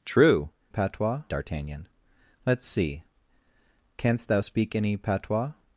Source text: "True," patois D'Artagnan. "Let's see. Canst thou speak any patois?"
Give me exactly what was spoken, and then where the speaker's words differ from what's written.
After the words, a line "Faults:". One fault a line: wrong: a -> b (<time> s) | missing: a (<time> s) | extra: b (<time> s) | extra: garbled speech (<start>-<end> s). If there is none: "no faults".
"True," patois D'Artagnan. "Let's see. Canst thou speak any patois?"
Faults:
no faults